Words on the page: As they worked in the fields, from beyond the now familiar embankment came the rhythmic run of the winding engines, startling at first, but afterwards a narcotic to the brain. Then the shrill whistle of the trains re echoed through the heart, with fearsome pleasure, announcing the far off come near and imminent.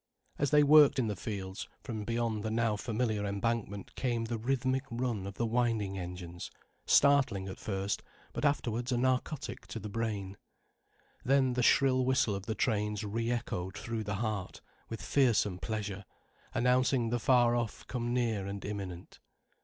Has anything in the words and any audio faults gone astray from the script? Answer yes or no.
no